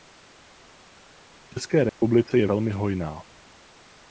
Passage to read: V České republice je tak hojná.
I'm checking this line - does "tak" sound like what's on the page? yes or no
no